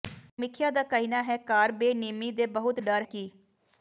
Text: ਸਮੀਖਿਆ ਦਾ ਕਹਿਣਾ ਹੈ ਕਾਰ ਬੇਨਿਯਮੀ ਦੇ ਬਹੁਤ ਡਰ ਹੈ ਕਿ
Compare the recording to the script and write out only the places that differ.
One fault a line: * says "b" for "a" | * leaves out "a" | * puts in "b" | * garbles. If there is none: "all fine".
* leaves out "ਹੈ"